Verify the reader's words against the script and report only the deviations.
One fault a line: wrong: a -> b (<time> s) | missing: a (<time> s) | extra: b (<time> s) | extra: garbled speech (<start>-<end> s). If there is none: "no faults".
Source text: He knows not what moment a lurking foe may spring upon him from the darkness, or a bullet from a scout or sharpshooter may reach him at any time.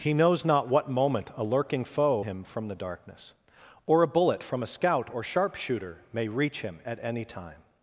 missing: may spring upon (2.2 s)